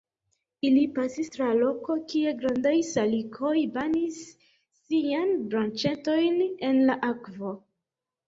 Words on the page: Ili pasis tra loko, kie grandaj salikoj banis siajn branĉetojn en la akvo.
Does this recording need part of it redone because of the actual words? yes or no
no